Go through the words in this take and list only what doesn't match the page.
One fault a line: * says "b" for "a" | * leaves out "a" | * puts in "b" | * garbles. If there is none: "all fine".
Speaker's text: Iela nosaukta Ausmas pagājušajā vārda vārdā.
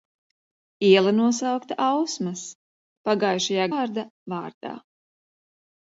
all fine